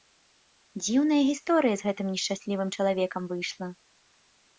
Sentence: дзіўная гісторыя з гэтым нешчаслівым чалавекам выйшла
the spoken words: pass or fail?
pass